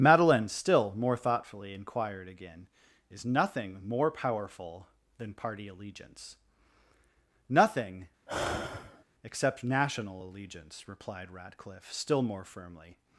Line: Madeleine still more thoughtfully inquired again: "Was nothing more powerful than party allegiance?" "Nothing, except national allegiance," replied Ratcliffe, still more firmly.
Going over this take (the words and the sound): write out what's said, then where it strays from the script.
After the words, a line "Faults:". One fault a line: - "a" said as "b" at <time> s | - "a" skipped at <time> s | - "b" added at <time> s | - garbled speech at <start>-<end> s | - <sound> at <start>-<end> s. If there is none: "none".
Madeleine still more thoughtfully inquired again: "Is nothing more powerful than party allegiance?" "Nothing, except national allegiance," replied Ratcliffe, still more firmly.
Faults:
- "Was" said as "Is" at 3.1 s
- sigh at 8.3-9.0 s